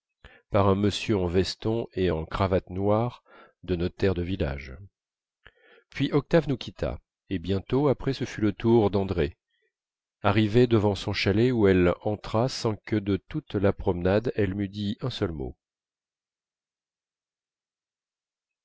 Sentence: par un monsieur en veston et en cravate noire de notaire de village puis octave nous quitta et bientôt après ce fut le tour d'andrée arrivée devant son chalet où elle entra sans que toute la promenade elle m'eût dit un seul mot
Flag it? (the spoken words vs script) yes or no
yes